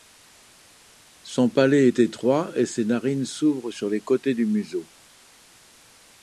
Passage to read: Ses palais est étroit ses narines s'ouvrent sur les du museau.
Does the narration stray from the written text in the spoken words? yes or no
yes